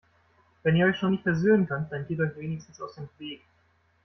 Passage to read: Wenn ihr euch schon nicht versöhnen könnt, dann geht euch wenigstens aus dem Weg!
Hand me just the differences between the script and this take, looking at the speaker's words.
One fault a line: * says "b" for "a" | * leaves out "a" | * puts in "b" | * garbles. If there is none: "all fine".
all fine